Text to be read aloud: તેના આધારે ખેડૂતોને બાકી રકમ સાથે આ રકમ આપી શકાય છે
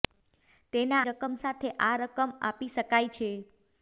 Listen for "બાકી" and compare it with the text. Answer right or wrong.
wrong